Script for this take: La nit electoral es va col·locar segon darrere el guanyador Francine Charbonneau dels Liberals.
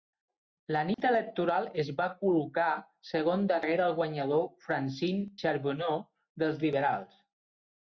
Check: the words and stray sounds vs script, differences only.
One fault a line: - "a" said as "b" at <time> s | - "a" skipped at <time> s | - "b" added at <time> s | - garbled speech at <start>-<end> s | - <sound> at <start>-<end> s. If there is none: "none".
- dropout at 0.9-1.0 s